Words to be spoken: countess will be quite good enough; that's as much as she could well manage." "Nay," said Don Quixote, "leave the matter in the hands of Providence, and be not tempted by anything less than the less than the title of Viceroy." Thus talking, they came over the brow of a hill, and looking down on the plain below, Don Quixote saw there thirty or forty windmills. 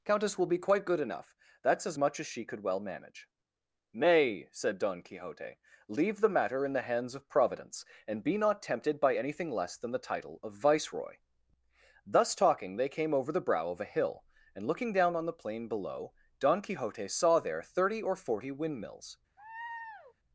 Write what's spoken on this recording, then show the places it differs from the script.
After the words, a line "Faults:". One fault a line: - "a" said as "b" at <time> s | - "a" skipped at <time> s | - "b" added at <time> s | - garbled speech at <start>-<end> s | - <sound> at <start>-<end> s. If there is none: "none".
countess will be quite good enough; that's as much as she could well manage." "Nay," said Don Quixote, "leave the matter in the hands of Providence, and be not tempted by anything less than the title of Viceroy." Thus talking, they came over the brow of a hill, and looking down on the plain below, Don Quixote saw there thirty or forty windmills.
Faults:
- "less than the" skipped at 10.1 s
- laugh at 19.4-20.1 s